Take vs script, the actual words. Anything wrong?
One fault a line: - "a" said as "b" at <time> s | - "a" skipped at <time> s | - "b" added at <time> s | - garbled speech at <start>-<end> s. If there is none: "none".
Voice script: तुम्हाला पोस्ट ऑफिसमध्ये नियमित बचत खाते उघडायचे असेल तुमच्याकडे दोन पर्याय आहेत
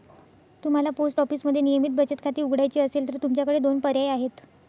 - "तर" added at 3.1 s